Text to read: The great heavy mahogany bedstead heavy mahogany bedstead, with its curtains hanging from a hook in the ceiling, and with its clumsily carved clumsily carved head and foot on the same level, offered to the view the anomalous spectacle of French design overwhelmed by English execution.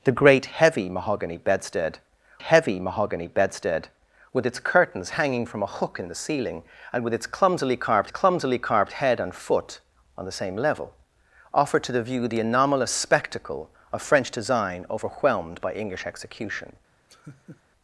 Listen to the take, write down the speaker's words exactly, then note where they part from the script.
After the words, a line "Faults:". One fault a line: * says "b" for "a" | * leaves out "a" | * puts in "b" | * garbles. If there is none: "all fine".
The great heavy mahogany bedstead heavy mahogany bedstead, with its curtains hanging from a hook in the ceiling, and with its clumsily carved clumsily carved head and foot on the same level, offered to the view the anomalous spectacle of French design overwhelmed by English execution.
Faults:
all fine